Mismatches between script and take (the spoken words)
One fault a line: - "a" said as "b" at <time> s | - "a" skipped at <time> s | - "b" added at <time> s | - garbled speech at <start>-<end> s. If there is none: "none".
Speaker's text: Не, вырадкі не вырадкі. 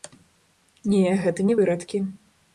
- "вырадкі" said as "гэта" at 1.3 s